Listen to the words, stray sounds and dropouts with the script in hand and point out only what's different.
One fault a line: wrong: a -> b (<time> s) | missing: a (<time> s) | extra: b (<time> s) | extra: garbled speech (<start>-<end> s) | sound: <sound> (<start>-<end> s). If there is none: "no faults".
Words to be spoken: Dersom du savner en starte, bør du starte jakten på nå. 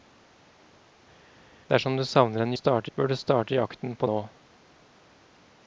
no faults